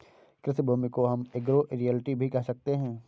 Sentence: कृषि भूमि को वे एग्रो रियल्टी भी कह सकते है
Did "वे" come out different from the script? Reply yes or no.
yes